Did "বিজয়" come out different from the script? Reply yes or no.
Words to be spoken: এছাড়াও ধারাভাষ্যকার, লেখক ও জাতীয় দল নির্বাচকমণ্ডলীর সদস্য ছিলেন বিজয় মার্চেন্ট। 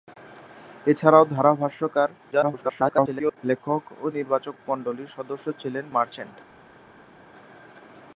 yes